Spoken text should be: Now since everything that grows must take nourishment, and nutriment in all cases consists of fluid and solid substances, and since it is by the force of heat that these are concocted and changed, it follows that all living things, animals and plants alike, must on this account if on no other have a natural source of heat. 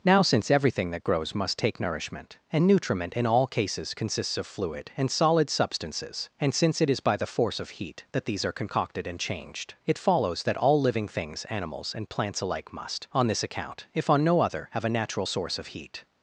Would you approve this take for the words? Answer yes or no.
yes